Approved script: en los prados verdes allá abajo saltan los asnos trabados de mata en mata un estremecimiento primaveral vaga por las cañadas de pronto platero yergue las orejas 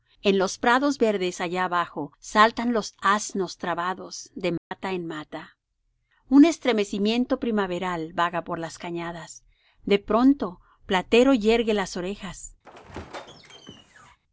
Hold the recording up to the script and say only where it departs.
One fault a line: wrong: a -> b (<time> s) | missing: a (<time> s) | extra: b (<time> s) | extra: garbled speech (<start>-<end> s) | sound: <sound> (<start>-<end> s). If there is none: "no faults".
sound: dropout (4.6-4.7 s)
sound: squeak (12.6-14.2 s)